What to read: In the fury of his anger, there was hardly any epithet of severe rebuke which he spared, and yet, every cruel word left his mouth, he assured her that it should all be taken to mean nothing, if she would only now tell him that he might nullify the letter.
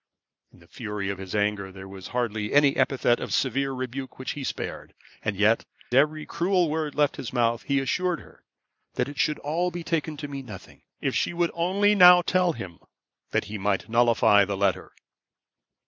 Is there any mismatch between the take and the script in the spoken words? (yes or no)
no